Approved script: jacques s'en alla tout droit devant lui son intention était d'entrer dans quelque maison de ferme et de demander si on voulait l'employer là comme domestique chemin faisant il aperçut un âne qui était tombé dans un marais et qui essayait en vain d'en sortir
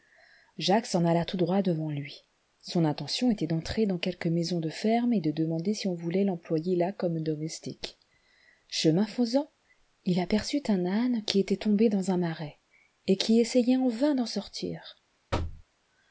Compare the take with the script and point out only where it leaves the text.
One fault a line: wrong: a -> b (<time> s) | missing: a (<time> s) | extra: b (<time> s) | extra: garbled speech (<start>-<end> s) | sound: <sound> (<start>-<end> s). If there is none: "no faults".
sound: thud (15.3-15.6 s)